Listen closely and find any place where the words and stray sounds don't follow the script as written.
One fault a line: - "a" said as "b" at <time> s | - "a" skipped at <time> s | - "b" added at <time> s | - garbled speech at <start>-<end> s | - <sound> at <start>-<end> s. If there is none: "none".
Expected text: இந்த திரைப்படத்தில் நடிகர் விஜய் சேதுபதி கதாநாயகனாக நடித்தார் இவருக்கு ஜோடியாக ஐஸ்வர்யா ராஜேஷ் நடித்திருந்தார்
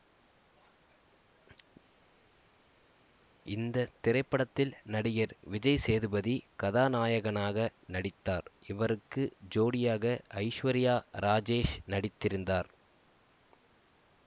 none